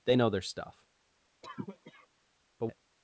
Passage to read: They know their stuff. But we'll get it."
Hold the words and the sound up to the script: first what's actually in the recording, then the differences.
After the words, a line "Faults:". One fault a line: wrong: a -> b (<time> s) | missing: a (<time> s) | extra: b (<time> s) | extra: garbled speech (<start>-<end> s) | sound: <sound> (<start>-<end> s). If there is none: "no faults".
They know their stuff. But it."
Faults:
sound: cough (1.4-2.1 s)
missing: we'll get (2.7 s)